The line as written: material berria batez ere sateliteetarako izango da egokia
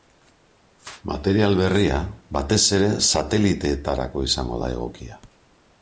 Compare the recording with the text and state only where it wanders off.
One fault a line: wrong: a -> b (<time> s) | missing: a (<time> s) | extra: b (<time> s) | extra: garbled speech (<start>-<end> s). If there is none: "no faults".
no faults